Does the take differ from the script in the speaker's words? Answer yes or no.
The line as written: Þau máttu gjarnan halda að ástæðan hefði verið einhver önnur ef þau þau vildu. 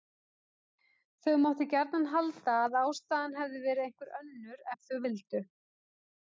yes